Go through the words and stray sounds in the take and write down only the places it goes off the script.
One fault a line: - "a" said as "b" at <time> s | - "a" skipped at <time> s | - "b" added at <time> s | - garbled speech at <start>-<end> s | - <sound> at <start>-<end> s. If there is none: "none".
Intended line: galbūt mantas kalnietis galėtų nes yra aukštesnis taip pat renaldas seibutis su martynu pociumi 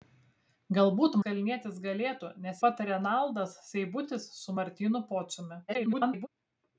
- "mantas" skipped at 1.2 s
- "yra aukštesnis taip" skipped at 2.6 s
- garbled speech at 5.7-6.3 s